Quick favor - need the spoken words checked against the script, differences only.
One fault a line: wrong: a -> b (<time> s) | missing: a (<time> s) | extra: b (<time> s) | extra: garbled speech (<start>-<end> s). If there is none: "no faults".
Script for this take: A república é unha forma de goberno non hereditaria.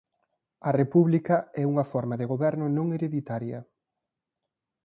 no faults